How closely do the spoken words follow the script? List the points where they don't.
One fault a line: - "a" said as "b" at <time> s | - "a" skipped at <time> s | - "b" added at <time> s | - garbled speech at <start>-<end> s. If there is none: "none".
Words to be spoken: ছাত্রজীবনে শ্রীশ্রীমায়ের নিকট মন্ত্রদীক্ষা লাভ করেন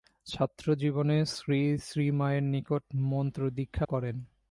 - "লাভ" skipped at 3.9 s